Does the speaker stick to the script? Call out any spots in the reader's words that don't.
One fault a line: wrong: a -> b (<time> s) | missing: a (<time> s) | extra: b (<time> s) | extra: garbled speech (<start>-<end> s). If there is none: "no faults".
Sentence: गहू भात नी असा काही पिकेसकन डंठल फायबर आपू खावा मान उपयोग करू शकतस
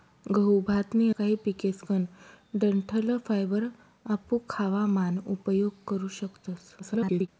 missing: असा (1.1 s)
extra: garbled speech (6.8-7.3 s)